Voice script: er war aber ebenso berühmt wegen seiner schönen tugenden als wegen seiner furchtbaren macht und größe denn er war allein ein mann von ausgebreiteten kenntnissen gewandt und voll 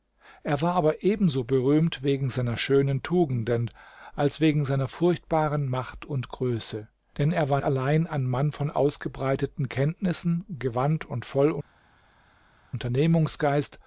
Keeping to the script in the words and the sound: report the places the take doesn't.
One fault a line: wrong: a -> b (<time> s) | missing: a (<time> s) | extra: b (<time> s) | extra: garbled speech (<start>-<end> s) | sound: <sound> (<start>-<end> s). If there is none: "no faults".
no faults